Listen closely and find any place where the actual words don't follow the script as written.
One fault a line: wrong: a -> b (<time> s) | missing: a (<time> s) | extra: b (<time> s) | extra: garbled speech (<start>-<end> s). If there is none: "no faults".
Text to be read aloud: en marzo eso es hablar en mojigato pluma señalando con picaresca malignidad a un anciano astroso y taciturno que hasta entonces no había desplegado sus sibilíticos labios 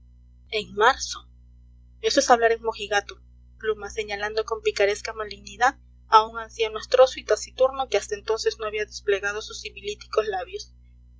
no faults